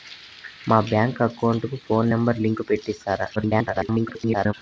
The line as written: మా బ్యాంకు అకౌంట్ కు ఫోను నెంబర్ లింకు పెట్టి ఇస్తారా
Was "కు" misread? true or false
false